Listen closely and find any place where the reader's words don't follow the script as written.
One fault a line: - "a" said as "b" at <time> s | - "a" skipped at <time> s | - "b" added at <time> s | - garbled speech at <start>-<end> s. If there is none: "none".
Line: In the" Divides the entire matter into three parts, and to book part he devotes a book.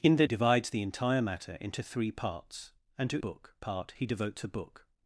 none